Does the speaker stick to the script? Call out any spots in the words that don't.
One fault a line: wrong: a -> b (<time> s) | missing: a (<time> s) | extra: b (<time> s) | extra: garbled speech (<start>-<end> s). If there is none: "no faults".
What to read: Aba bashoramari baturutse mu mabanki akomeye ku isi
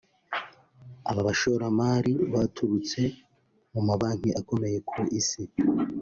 no faults